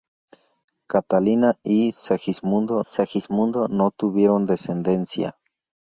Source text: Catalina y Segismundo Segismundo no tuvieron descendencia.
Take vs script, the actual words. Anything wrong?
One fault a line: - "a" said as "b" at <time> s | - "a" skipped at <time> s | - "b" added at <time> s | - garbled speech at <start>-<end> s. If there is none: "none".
none